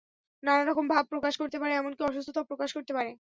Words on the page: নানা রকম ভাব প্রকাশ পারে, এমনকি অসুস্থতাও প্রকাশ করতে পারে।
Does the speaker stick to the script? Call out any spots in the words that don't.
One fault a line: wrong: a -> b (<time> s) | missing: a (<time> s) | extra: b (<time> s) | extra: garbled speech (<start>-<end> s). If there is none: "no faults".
extra: করতে (1.4 s)